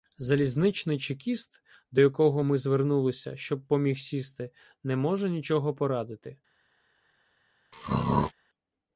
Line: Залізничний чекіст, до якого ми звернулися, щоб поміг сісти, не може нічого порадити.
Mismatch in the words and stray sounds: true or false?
true